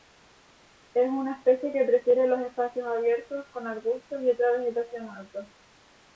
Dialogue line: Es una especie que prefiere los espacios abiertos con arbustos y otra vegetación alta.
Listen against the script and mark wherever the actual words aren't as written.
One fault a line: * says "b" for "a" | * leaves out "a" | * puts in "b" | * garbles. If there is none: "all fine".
all fine